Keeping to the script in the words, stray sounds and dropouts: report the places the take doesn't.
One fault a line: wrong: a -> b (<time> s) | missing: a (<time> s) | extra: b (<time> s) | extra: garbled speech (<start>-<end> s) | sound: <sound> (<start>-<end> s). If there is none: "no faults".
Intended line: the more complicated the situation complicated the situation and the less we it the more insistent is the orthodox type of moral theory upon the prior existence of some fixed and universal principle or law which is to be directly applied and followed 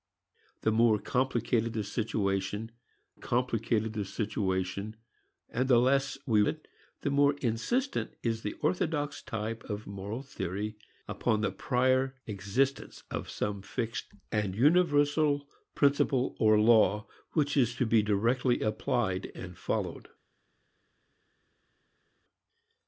no faults